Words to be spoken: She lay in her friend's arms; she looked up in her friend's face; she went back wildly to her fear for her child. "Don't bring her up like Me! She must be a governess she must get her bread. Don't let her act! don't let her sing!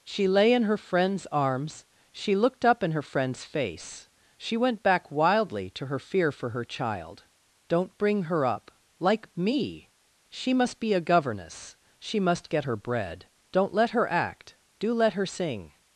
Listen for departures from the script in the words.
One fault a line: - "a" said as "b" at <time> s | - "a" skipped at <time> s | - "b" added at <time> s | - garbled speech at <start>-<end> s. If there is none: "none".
- "don't" said as "do" at 14.8 s